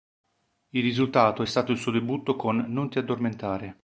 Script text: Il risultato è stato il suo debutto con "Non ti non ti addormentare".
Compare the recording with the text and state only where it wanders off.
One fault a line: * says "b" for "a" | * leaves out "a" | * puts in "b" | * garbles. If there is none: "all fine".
* leaves out "non ti"